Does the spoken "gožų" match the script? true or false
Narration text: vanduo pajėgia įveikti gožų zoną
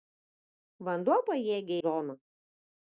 false